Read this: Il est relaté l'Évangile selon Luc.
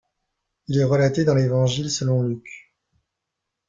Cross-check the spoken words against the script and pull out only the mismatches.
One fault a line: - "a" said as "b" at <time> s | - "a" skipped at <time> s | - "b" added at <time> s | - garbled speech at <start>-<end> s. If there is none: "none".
- "dans" added at 1.2 s